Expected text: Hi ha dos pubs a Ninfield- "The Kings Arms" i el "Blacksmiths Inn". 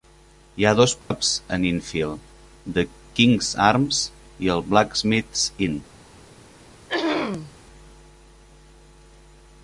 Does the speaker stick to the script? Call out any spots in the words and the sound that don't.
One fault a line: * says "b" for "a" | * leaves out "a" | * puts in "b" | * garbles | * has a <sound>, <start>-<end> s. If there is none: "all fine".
* has a dropout, 1.0-1.1 s
* has a throat clearing, 6.9-7.5 s